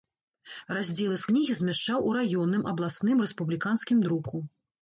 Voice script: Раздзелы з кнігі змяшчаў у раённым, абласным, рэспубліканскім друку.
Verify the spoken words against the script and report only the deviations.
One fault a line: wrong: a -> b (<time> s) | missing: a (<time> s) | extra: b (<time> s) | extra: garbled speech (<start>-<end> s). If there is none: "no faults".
no faults